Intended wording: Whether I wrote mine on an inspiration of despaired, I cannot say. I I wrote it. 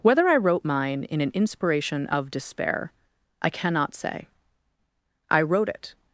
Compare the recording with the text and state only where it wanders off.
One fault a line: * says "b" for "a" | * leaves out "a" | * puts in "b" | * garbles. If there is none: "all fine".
* says "in" for "on"
* says "despair" for "despaired"
* leaves out "I"